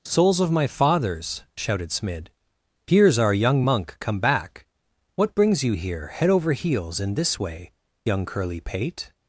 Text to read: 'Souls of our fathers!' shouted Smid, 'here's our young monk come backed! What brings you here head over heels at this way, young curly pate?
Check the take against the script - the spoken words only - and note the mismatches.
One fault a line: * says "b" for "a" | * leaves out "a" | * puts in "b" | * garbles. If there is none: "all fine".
* says "my" for "our"
* says "back" for "backed"
* says "in" for "at"